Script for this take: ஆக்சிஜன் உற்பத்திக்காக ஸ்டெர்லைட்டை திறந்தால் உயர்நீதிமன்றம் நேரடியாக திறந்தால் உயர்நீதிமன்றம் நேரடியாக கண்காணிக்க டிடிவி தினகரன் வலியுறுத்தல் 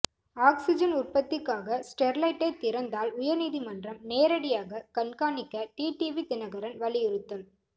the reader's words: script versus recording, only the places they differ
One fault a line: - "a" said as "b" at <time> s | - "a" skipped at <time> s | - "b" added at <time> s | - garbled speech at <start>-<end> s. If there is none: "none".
- "திறந்தால் உயர்நீதிமன்றம் நேரடியாக" skipped at 4.8 s